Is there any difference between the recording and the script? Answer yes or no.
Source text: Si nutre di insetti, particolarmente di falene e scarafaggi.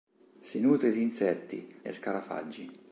yes